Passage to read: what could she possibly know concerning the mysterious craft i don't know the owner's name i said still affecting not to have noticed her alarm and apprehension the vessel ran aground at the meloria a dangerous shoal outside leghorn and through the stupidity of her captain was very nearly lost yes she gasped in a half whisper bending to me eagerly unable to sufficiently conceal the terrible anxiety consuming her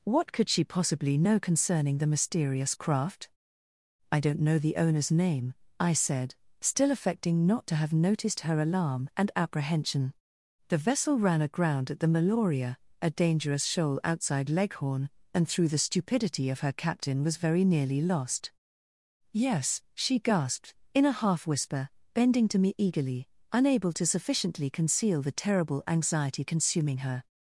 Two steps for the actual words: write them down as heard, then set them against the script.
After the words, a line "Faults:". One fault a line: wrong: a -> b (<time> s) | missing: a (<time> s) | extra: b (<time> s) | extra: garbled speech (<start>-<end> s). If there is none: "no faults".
what could she possibly know concerning the mysterious craft i don't know the owner's name i said still affecting not to have noticed her alarm and apprehension the vessel ran aground at the meloria a dangerous shoal outside leghorn and through the stupidity of her captain was very nearly lost yes she gasped in a half whisper bending to me eagerly unable to sufficiently conceal the terrible anxiety consuming her
Faults:
no faults